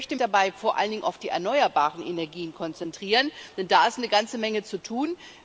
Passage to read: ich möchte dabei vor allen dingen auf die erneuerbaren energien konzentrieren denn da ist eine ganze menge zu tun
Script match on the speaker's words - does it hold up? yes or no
yes